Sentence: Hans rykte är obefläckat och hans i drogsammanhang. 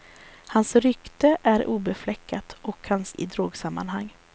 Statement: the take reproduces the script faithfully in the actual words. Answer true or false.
true